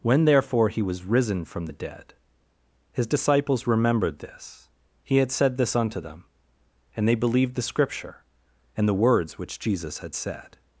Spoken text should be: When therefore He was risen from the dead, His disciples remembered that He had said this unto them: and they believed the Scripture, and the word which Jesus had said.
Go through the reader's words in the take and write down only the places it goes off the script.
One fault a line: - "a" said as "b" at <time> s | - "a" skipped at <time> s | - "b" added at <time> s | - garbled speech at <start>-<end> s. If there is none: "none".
- "that" said as "this" at 4.2 s
- "word" said as "words" at 8.9 s